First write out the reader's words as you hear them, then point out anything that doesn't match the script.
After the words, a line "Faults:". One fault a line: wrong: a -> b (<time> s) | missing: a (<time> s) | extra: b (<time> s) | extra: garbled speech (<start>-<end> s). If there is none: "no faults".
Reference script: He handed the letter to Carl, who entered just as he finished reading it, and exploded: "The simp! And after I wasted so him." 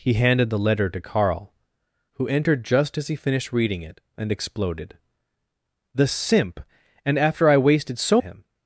He handed the letter to Carl, who entered just as he finished reading it, and exploded: "The simp! And after I wasted so him."
Faults:
no faults